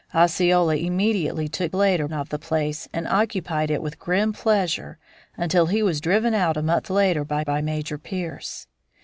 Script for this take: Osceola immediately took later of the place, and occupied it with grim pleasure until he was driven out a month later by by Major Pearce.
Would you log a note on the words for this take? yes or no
no